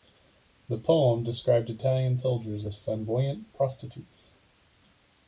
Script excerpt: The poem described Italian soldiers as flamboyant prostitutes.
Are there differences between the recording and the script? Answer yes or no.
no